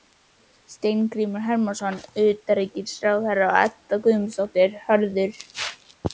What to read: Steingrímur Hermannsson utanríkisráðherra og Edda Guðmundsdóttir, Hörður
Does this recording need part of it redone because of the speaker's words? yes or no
no